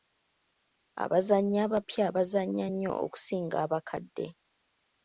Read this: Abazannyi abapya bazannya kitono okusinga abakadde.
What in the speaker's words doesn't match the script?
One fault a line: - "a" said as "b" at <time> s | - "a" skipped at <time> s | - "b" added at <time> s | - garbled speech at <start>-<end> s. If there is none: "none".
- "kitono" said as "nnyo" at 2.7 s